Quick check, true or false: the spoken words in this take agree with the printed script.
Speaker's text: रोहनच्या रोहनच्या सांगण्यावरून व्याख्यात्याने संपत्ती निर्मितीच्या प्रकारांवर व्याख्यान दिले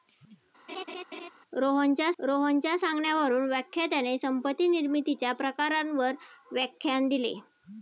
true